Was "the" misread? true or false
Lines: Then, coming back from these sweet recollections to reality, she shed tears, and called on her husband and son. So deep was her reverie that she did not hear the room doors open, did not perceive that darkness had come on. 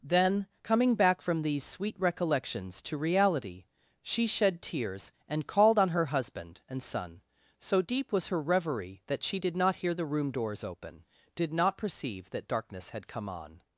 false